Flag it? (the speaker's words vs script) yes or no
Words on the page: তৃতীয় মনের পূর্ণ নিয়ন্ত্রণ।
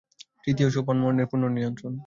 yes